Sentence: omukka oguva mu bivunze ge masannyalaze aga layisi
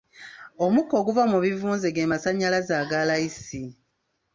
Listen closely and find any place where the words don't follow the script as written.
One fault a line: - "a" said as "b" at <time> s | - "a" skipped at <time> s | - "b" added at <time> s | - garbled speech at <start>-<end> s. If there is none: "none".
none